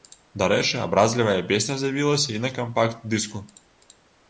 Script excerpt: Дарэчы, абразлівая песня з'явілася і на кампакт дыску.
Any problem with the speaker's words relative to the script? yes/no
no